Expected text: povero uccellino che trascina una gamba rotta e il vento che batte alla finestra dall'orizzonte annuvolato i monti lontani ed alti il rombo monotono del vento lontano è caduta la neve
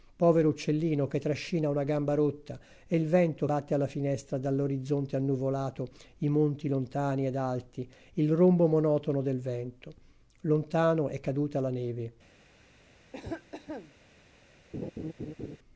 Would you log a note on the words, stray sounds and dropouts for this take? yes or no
yes